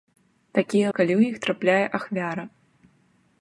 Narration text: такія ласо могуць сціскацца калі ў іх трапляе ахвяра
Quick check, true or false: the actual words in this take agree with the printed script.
false